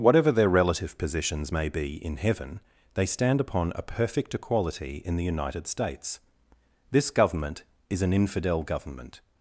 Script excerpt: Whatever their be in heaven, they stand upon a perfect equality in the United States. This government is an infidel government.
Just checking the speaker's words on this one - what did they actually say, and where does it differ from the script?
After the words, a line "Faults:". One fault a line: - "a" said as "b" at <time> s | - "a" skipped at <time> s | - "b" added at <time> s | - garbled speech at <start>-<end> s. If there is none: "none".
Whatever their relative positions may be in heaven, they stand upon a perfect equality in the United States. This government is an infidel government.
Faults:
- "relative positions may" added at 0.5 s